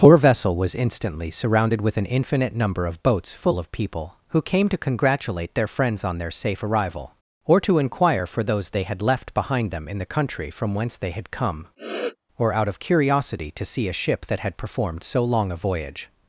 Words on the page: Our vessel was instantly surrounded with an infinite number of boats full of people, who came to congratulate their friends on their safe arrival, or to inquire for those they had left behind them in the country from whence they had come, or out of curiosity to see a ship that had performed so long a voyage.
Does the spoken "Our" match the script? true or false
false